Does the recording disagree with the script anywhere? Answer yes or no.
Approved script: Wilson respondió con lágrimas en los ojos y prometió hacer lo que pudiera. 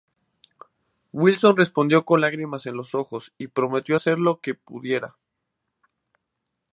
no